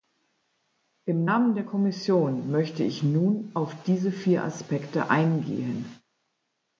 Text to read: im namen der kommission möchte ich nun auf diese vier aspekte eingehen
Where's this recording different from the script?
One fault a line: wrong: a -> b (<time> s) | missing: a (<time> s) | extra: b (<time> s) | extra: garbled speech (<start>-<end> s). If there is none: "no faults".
no faults